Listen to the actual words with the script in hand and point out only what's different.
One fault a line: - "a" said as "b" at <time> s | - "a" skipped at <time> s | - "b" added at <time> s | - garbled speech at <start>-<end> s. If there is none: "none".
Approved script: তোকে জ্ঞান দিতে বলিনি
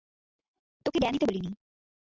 none